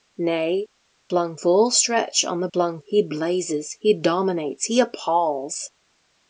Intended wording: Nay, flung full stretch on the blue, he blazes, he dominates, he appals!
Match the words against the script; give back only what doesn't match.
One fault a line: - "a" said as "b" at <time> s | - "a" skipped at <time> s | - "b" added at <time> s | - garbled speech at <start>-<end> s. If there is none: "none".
- "blue" said as "flung" at 2.5 s